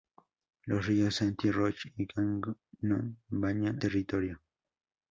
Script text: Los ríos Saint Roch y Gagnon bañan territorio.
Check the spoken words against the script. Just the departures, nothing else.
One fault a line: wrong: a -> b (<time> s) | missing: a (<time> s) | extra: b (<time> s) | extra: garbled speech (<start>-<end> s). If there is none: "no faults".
no faults